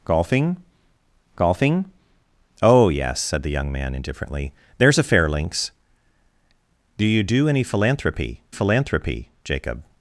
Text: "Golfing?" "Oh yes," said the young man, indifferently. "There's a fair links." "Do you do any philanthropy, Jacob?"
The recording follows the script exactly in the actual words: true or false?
false